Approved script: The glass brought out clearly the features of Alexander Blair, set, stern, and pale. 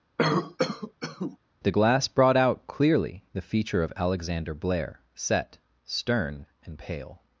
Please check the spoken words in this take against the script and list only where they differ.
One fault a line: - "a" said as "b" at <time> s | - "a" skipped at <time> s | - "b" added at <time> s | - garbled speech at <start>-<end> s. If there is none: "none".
- "features" said as "feature" at 3.4 s